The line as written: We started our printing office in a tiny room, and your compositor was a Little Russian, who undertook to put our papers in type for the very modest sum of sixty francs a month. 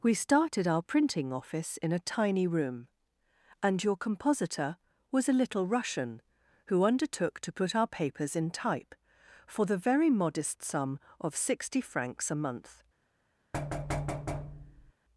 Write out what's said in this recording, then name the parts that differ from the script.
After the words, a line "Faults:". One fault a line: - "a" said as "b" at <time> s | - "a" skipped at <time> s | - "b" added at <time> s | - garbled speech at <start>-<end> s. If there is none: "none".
We started our printing office in a tiny room, and your compositor was a Little Russian, who undertook to put our papers in type for the very modest sum of sixty francs a month.
Faults:
none